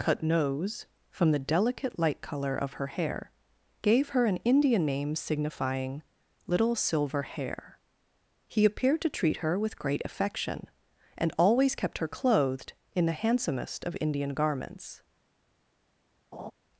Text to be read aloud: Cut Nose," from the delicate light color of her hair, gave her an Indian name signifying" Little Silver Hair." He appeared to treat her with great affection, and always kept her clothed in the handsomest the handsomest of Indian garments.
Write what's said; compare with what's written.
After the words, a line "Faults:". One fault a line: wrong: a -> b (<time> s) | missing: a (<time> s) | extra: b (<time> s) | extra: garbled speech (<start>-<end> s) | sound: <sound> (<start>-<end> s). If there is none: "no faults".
Cut Nose," from the delicate light color of her hair, gave her an Indian name signifying" Little Silver Hair." He appeared to treat her with great affection, and always kept her clothed in the handsomest of Indian garments.
Faults:
missing: the handsomest (13.8 s)
sound: laugh (16.3-16.5 s)